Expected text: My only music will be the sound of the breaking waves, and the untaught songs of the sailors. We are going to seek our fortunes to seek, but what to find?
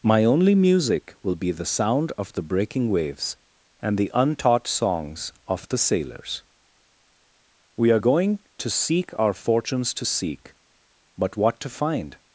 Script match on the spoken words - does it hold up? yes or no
yes